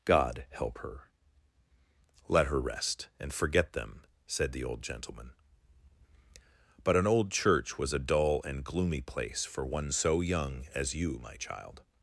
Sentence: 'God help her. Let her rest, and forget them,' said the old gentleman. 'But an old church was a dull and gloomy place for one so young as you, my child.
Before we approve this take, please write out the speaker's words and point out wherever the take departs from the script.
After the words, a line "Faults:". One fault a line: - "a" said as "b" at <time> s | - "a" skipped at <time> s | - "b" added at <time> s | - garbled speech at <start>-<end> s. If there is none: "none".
'God help her. Let her rest, and forget them,' said the old gentleman. 'But an old church was a dull and gloomy place for one so young as you, my child.
Faults:
none